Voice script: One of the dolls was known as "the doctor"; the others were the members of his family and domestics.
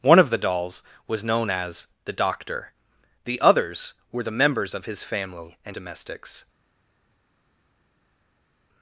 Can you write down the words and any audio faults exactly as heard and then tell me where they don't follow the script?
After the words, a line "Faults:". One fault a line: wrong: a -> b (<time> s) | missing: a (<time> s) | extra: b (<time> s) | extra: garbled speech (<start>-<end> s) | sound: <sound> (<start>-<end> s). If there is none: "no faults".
One of the dolls was known as "the doctor"; the others were the members of his family and domestics.
Faults:
no faults